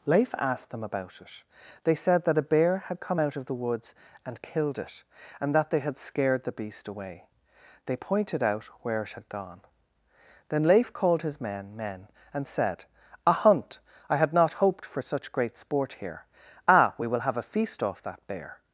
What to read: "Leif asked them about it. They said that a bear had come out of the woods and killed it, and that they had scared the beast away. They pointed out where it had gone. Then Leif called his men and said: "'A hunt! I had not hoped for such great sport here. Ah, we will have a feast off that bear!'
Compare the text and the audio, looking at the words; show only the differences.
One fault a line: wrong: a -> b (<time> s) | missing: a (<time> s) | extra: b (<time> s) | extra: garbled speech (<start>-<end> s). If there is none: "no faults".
extra: men (11.7 s)